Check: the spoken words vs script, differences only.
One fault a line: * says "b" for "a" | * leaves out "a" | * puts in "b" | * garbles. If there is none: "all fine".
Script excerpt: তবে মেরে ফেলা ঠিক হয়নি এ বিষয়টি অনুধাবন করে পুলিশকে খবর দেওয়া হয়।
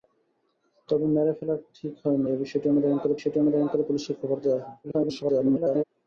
* puts in "বিষয়টি অনুধাবন করে"
* garbles